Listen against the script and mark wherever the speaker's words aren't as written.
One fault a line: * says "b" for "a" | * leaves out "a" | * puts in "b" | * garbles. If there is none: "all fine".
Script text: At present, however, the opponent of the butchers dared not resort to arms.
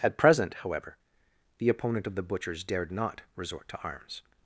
all fine